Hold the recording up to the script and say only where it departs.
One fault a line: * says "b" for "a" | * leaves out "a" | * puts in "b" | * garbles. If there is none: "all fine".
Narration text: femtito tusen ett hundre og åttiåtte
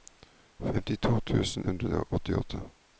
* leaves out "ett"